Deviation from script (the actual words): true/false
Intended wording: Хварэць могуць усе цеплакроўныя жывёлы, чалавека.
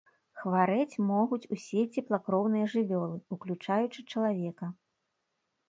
true